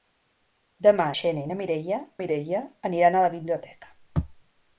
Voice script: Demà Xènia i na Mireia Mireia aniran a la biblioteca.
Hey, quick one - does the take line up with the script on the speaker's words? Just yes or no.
yes